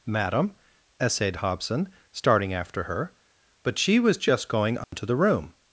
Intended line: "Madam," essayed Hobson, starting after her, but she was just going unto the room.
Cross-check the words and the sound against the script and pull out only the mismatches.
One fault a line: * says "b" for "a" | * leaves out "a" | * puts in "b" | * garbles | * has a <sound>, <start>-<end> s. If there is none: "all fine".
* has a dropout, 4.8-4.9 s